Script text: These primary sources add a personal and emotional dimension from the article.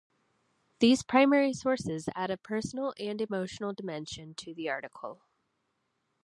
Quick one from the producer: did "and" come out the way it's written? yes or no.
yes